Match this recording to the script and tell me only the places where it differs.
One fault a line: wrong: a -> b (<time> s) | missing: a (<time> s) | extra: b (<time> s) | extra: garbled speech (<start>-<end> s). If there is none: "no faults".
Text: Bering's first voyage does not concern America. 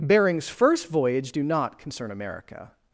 wrong: does -> do (1.3 s)